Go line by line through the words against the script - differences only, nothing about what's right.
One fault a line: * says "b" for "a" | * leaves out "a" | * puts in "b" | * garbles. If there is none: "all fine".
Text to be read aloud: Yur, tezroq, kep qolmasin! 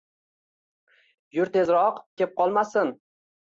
all fine